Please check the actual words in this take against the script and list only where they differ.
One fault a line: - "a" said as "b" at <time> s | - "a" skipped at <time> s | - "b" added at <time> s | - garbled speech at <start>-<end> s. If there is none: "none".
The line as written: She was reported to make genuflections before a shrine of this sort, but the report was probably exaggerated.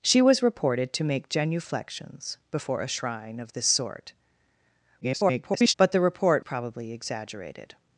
- garbled speech at 5.0-5.7 s
- "was" skipped at 6.5 s